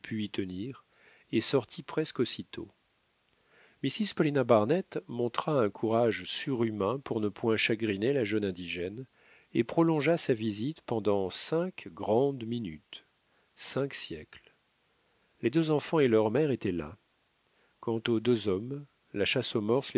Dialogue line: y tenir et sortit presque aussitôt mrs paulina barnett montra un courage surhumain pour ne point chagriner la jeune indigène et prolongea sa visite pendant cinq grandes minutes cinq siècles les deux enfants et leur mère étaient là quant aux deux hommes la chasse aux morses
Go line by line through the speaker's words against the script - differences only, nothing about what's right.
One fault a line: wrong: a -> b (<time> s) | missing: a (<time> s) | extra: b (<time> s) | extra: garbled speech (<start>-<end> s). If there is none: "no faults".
no faults